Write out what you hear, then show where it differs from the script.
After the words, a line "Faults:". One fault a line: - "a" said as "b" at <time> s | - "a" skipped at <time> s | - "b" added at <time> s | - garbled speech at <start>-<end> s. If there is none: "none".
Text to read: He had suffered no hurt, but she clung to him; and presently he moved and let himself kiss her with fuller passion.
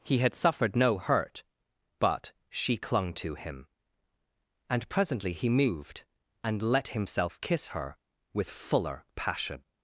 He had suffered no hurt, but she clung to him; and presently he moved and let himself kiss her with fuller passion.
Faults:
none